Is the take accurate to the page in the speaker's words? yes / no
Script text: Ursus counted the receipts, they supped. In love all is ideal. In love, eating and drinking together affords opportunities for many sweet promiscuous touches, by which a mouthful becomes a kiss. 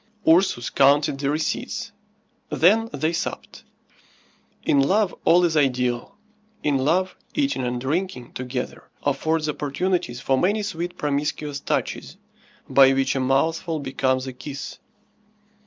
no